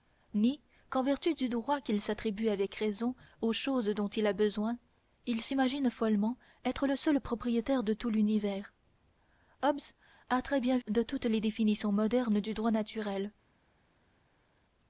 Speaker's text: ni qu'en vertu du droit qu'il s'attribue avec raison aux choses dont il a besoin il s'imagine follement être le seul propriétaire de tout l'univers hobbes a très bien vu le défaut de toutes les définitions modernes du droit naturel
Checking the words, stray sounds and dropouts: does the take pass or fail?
fail